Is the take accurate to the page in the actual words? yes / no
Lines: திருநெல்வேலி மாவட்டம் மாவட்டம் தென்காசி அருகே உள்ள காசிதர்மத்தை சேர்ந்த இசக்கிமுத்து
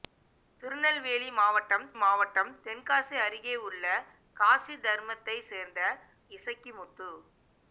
yes